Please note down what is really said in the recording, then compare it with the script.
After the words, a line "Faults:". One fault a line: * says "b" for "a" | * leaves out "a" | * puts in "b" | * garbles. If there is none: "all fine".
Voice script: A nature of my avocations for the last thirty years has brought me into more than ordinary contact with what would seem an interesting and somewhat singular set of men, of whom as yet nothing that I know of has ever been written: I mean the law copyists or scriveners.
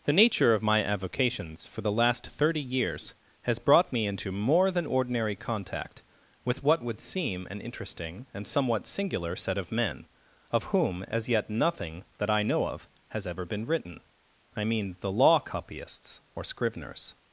The nature of my avocations for the last thirty years has brought me into more than ordinary contact with what would seem an interesting and somewhat singular set of men, of whom as yet nothing that I know of has ever been written: I mean the law copyists or scriveners.
Faults:
* says "The" for "A"